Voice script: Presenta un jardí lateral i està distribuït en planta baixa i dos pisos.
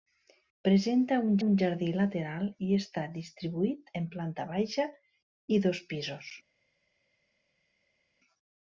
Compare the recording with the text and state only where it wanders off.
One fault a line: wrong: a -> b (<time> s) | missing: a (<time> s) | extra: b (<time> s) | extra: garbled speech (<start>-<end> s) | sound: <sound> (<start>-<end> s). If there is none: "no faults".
extra: un (1.4 s)